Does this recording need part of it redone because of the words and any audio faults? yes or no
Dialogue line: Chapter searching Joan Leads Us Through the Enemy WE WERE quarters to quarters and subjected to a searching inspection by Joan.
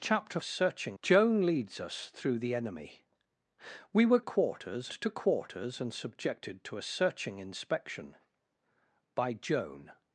no